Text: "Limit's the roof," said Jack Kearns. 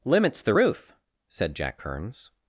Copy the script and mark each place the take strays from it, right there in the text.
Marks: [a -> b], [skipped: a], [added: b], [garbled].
"Limit's the roof," said Jack Kearns.